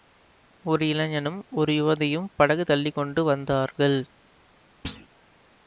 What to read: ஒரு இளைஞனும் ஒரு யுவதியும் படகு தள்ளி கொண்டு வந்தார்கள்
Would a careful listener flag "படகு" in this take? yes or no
no